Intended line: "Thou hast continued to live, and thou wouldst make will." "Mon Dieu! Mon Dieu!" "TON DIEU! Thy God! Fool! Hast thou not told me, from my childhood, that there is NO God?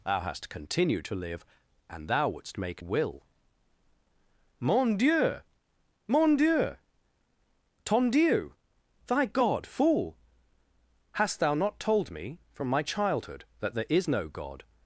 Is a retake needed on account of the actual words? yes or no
no